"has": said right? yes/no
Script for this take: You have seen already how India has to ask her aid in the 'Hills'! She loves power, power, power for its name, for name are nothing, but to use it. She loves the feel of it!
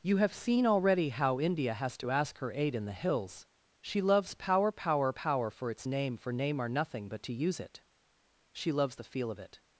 yes